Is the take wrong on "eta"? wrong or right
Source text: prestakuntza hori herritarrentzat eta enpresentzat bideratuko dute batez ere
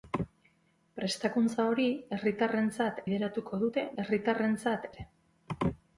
wrong